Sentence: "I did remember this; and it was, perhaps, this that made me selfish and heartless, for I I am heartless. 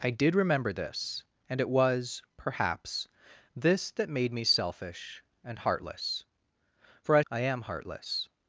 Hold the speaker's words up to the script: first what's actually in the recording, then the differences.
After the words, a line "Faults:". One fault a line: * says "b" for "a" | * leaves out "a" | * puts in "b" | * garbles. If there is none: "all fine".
"I did remember this; and it was, perhaps, this that made me selfish and heartless, for I I am heartless.
Faults:
all fine